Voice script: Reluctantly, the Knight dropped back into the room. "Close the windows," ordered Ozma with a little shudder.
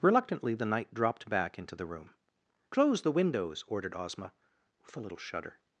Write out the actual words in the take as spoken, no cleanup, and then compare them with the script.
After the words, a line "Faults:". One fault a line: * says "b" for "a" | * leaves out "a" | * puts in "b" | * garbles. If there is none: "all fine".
Reluctantly, the Knight dropped back into the room. "Close the windows," ordered Ozma with a little shudder.
Faults:
all fine